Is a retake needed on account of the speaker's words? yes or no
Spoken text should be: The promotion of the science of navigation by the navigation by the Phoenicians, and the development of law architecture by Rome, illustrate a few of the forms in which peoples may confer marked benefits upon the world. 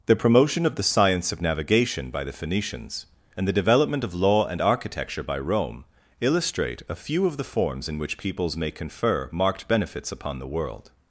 yes